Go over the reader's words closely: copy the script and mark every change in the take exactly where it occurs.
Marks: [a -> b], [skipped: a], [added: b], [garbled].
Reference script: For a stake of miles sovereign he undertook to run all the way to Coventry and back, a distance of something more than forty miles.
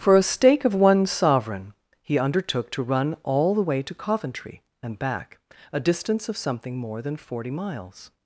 For a stake of [miles -> one] sovereign he undertook to run all the way to Coventry and back, a distance of something more than forty miles.